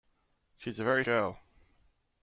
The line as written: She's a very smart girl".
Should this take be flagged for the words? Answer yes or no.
yes